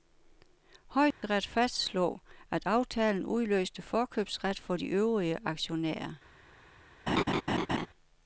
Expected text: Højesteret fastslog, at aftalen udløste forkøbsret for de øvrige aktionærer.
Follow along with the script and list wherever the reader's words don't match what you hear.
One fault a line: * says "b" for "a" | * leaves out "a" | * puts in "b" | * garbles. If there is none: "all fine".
all fine